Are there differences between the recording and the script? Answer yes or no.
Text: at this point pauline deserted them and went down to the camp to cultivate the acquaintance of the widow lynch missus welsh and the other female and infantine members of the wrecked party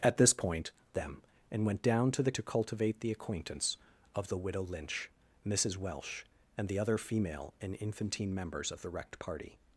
yes